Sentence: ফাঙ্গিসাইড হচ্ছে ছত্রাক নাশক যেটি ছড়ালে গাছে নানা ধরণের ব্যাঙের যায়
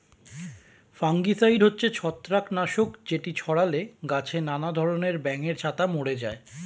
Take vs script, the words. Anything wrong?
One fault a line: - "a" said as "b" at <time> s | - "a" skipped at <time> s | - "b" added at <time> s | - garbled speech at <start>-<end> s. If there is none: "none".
- "ছাতা মরে" added at 5.6 s